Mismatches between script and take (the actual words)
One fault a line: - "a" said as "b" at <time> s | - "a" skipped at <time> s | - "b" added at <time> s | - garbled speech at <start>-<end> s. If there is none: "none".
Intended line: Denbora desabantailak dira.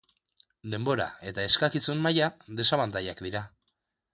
- "eta eskakizun maila" added at 1.3 s